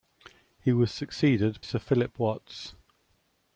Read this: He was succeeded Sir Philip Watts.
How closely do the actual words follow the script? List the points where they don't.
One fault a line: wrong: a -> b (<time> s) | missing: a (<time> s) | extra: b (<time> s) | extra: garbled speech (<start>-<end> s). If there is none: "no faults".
no faults